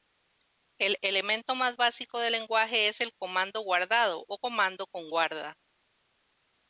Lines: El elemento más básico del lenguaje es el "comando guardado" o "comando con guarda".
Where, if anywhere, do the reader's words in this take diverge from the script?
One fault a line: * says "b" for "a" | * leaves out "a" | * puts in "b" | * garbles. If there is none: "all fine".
all fine